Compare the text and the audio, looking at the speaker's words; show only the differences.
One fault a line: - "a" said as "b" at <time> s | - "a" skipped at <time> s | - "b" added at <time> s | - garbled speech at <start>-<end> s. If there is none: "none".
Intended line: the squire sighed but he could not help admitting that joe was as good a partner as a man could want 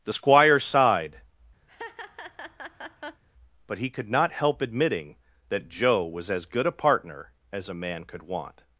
none